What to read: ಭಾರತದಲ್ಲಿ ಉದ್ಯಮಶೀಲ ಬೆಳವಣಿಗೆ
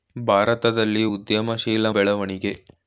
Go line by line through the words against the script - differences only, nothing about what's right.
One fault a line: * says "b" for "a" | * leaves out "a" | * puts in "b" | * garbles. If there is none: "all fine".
all fine